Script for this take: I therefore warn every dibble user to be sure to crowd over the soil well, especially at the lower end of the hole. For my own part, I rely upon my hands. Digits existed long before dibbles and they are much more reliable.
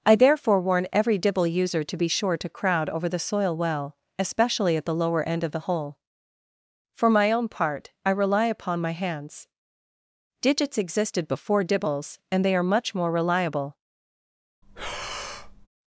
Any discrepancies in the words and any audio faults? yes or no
yes